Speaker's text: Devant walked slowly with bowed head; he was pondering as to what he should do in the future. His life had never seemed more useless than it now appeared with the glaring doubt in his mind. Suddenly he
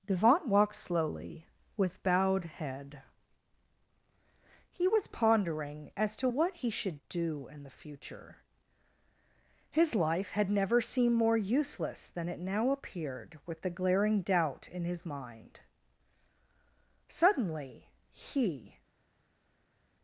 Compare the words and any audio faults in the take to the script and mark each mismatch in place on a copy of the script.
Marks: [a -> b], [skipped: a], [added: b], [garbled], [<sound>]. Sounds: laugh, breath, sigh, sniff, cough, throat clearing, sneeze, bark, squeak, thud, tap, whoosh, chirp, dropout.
Devant walked slowly with bowed head; he was pondering as to what he should do in the future. His life had never seemed more useless than it now appeared with the glaring doubt in his mind. Suddenly he